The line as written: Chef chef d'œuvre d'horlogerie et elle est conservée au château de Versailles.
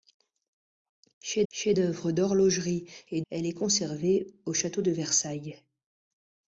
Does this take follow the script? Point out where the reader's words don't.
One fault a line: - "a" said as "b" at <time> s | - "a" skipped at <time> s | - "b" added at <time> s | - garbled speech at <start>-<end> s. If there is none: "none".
none